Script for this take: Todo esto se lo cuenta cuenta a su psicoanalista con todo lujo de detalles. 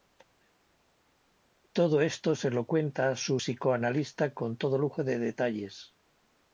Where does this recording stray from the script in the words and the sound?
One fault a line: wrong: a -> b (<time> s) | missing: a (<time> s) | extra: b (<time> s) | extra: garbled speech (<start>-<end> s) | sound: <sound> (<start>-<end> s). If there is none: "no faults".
missing: cuenta (3.1 s)